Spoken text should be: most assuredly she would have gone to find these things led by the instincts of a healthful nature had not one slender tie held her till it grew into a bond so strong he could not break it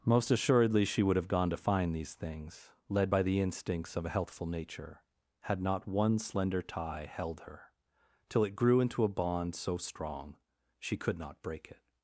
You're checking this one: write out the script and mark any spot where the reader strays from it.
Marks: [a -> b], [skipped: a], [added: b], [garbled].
most assuredly she would have gone to find these things led by the instincts of a healthful nature had not one slender tie held her till it grew into a bond so strong [he -> she] could not break it